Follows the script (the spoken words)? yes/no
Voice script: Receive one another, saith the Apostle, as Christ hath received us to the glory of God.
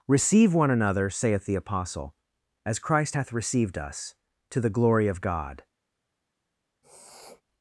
yes